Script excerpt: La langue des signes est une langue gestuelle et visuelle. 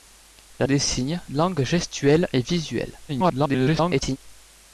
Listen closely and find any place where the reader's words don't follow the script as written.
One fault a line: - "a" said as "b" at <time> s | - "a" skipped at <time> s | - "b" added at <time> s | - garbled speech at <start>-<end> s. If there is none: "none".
- "langue" skipped at 0.7 s
- "est une" skipped at 1.2 s
- garbled speech at 3.1-4.2 s